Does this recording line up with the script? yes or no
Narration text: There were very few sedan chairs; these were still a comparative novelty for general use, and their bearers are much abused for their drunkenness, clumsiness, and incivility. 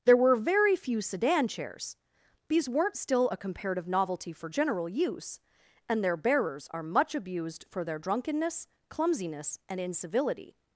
no